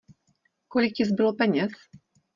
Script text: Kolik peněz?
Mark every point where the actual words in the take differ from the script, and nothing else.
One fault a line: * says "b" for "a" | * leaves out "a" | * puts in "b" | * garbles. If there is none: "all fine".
* puts in "ti zbylo"